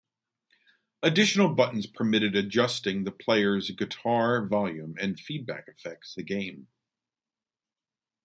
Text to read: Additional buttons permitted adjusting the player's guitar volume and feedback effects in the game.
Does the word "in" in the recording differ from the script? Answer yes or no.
yes